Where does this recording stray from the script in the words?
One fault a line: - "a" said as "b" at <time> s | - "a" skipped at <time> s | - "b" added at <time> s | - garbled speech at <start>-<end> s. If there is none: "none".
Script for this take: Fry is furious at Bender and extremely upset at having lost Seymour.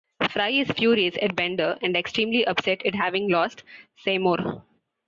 none